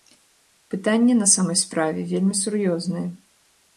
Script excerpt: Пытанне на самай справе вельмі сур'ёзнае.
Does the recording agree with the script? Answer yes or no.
yes